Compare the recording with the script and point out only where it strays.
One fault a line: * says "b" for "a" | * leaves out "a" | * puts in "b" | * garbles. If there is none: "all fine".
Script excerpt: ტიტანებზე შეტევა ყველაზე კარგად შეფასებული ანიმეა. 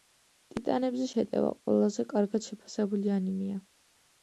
all fine